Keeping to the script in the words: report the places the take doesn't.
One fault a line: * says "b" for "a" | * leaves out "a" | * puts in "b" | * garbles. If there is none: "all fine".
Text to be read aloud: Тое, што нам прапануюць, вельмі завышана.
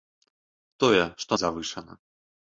* leaves out "нам прапануюць вельмі"